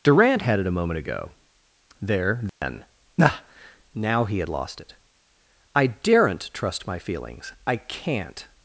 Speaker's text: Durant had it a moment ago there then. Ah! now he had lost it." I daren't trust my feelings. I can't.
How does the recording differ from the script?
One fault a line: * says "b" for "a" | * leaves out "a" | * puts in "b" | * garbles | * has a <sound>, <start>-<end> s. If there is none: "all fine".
* has a dropout, 2.5-2.6 s